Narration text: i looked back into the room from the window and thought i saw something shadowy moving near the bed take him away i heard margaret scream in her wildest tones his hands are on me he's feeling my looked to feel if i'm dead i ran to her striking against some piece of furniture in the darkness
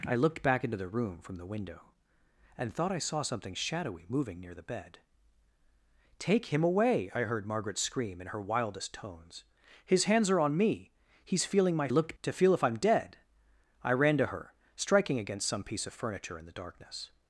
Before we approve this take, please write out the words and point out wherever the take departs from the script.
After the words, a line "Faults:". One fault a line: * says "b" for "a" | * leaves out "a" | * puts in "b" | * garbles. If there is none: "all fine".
i looked back into the room from the window and thought i saw something shadowy moving near the bed take him away i heard margaret scream in her wildest tones his hands are on me he's feeling my looked to feel if i'm dead i ran to her striking against some piece of furniture in the darkness
Faults:
all fine